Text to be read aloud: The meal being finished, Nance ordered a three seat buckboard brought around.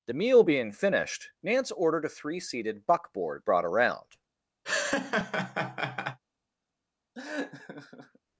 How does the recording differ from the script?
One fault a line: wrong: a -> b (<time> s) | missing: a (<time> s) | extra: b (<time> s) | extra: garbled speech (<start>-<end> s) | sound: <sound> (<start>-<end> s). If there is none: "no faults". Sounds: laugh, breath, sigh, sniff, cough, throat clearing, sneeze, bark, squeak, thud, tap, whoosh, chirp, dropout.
wrong: seat -> seated (2.4 s)
sound: laugh (4.6-6.2 s)
sound: laugh (7.1-8.2 s)